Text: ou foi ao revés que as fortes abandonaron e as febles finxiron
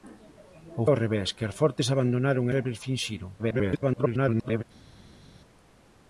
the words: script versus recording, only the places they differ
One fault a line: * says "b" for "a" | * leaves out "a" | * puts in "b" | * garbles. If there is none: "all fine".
* leaves out "foi"
* leaves out "as"
* garbles